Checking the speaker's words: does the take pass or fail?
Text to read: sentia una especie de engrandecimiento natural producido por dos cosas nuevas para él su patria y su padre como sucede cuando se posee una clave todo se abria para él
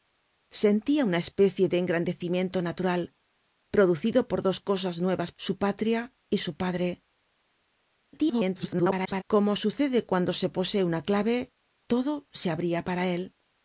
fail